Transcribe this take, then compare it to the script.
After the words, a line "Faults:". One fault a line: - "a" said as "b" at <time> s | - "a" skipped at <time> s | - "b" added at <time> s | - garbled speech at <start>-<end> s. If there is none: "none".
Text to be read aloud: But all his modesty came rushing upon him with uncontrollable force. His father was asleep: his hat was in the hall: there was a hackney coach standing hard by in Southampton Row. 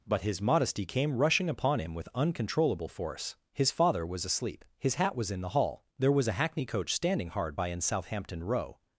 But his modesty came rushing upon him with uncontrollable force. His father was asleep: his hat was in the hall: there was a hackney coach standing hard by in Southampton Row.
Faults:
- "all" skipped at 0.2 s